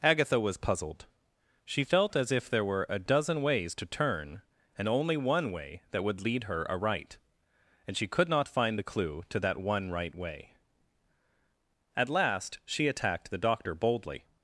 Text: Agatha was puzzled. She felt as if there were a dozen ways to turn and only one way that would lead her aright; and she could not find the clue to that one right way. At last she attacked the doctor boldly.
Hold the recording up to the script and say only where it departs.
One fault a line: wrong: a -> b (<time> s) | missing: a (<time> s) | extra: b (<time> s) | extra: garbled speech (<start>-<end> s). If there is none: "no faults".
no faults